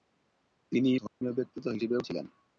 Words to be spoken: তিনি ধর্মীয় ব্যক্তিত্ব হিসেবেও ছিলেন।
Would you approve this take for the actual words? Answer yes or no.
yes